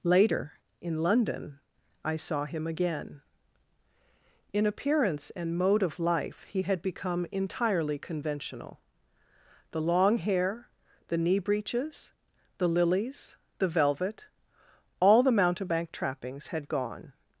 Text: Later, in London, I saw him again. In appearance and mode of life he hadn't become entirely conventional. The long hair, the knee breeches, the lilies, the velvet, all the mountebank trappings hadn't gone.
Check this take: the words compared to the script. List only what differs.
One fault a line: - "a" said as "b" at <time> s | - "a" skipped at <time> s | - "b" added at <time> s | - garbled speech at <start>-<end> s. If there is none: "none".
- "hadn't" said as "had" at 6.6 s
- "hadn't" said as "had" at 16.5 s